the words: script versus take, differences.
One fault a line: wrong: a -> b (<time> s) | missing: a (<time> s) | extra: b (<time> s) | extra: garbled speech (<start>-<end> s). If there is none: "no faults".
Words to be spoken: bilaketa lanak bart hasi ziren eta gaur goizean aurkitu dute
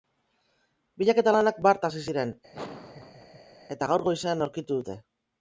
no faults